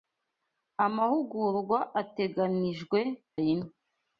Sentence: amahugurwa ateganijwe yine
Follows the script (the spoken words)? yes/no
yes